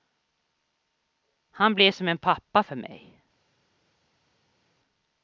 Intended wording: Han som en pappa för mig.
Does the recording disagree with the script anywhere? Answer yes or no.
yes